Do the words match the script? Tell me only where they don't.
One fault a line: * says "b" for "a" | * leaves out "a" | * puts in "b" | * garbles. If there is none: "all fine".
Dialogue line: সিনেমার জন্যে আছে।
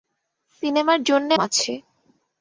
all fine